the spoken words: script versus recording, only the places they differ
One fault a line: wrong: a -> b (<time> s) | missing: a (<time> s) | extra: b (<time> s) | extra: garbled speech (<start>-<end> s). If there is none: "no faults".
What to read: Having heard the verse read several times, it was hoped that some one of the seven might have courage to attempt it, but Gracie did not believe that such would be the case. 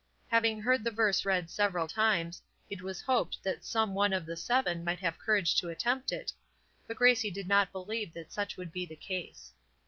no faults